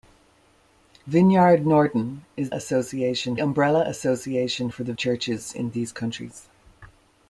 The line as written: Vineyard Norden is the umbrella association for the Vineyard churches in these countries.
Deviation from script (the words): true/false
true